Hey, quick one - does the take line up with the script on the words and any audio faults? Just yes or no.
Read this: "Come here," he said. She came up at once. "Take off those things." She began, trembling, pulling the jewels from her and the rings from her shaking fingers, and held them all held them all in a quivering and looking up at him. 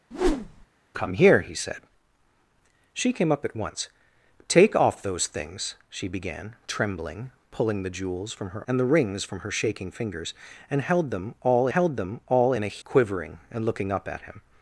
no